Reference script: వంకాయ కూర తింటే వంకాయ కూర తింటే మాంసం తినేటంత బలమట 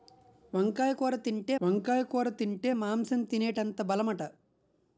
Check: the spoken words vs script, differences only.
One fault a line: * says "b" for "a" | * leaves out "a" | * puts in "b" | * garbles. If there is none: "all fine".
all fine